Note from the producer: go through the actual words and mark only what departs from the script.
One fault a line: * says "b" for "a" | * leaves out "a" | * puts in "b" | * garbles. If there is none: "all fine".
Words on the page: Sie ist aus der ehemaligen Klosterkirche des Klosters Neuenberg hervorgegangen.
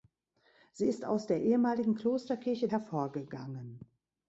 * leaves out "des Klosters Neuenberg"